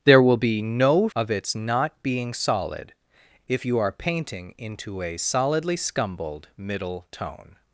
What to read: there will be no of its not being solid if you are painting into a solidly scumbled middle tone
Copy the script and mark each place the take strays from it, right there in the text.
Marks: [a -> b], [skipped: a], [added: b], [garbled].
there will be no of its not being solid if you are painting into a solidly scumbled middle tone